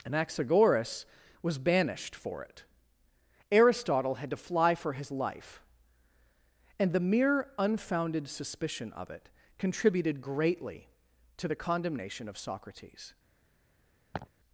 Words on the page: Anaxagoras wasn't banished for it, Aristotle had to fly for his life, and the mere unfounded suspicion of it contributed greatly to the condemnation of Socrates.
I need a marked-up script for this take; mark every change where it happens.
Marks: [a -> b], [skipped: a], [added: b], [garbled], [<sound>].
Anaxagoras [wasn't -> was] banished for it, Aristotle had to fly for his life, and the mere unfounded suspicion of it contributed greatly to the condemnation of Socrates. [laugh]